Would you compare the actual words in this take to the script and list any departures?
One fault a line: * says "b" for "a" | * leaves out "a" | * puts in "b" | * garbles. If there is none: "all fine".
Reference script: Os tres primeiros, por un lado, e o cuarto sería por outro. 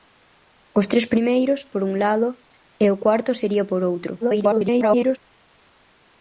* garbles